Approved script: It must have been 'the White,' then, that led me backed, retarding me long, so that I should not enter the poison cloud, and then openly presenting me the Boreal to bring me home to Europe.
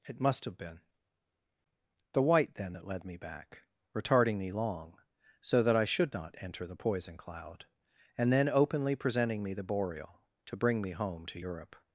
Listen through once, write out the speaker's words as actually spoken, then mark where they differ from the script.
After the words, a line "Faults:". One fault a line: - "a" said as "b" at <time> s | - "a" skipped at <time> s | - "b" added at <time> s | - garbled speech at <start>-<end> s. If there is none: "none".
It must have been 'the White,' then, that led me back, retarding me long, so that I should not enter the poison cloud, and then openly presenting me the Boreal to bring me home to Europe.
Faults:
- "backed" said as "back" at 3.2 s